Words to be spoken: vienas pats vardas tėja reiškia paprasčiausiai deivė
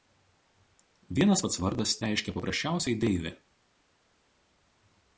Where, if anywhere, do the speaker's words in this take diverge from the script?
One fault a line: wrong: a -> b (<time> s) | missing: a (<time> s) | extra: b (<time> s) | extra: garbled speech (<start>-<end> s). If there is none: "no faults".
missing: tėja (1.9 s)